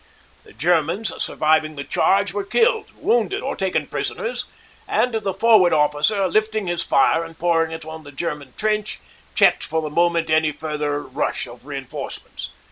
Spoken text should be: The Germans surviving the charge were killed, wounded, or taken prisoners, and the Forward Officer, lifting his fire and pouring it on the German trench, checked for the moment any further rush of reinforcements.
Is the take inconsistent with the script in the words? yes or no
no